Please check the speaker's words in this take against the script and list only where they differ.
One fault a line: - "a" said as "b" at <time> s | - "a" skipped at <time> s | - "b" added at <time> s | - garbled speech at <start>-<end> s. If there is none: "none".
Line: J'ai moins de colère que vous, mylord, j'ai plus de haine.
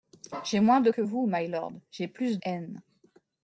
- "colère" skipped at 0.9 s
- "de" skipped at 2.4 s